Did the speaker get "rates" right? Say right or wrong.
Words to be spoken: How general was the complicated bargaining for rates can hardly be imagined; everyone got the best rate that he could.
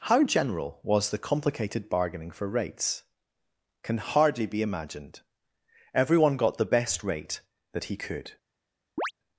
right